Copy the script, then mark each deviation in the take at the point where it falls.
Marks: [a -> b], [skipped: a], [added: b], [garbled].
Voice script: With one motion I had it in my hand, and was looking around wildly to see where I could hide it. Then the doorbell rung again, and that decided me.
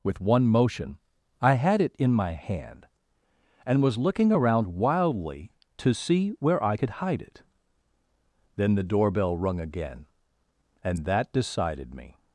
With one motion I had it in my hand, and was looking around wildly to see where I could hide it. Then the doorbell rung again, and that decided me.